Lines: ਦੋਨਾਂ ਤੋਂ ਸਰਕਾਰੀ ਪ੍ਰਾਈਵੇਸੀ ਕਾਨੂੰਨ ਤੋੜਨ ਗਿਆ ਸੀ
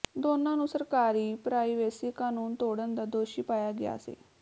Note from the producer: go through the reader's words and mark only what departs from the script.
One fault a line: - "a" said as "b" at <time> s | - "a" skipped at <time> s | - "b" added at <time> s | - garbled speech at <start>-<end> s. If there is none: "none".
- "ਤੋਂ" said as "ਨੂੰ" at 0.6 s
- "ਦਾ ਦੋਸ਼ੀ ਪਾਇਆ" added at 2.9 s